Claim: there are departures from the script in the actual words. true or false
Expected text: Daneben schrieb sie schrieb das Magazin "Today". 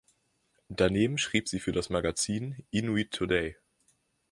true